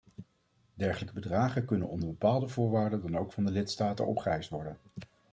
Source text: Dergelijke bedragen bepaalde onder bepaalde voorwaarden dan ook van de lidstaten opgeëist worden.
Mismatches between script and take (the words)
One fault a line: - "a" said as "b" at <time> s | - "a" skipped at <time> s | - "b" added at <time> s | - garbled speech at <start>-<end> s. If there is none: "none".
- "bepaalde" said as "kunnen" at 1.6 s